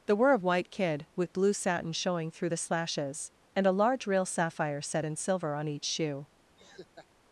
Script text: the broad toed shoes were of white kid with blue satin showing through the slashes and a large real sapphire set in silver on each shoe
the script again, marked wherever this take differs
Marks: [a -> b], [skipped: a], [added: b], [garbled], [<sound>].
the [skipped: broad toed shoes] were of white kid with blue satin showing through the slashes and a large real sapphire set in silver on each shoe [laugh]